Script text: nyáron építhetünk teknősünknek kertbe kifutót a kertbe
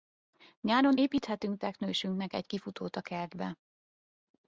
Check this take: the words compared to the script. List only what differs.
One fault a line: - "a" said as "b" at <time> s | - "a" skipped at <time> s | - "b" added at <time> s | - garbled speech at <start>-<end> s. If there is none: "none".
- "kertbe" said as "egy" at 2.3 s